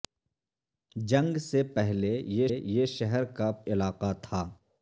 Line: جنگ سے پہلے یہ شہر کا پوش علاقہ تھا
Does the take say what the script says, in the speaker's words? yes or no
no